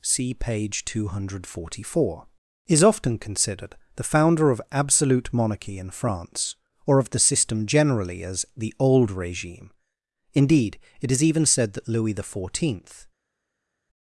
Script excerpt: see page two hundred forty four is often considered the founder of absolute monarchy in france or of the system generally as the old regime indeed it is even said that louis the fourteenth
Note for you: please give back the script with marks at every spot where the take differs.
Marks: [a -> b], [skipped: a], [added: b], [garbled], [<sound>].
see page two hundred forty four is often considered the founder of absolute monarchy in france or of the system generally as the old regime indeed it is even said that louis the fourteenth